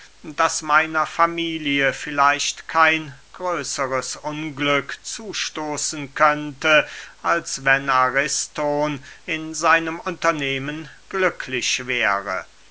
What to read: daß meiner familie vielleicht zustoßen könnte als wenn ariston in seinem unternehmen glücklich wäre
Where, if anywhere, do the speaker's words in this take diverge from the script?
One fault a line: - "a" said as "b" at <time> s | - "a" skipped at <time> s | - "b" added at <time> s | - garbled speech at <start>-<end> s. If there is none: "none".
- "kein größeres unglück" added at 2.7 s